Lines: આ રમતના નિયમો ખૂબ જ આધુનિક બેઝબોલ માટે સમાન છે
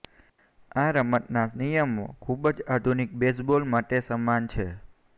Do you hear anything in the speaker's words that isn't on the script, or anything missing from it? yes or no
no